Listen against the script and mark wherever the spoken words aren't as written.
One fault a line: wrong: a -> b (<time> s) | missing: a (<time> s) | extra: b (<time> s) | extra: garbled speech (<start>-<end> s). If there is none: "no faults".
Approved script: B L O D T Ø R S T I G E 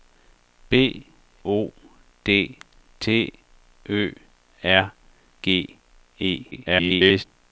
missing: L (1.1 s)
missing: S T I (4.9 s)
extra: garbled speech (6.5-7.2 s)